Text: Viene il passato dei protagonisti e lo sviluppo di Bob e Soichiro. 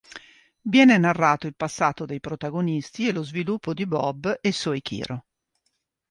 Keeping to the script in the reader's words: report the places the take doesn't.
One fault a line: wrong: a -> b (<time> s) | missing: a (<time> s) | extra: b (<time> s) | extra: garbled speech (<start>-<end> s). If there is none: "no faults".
extra: narrato (1.0 s)